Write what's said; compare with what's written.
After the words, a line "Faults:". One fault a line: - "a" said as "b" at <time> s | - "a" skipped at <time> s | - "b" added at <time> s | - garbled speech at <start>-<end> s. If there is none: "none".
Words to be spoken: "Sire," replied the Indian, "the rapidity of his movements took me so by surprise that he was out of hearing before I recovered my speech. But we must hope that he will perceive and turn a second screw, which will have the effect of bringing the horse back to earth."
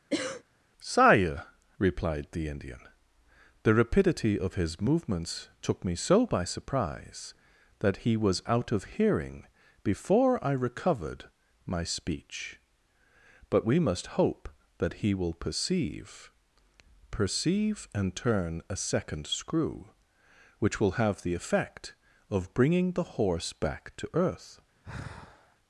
"Sire," replied the Indian, "the rapidity of his movements took me so by surprise that he was out of hearing before I recovered my speech. But we must hope that he will perceive perceive and turn a second screw, which will have the effect of bringing the horse back to earth."
Faults:
- "perceive" added at 17.1 s